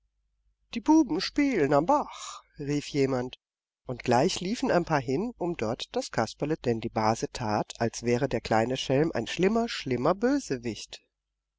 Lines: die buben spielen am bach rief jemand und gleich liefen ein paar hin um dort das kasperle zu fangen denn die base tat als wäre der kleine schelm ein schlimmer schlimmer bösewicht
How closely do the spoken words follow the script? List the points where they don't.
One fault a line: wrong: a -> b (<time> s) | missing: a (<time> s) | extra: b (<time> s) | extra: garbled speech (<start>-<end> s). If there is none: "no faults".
missing: zu fangen (6.6 s)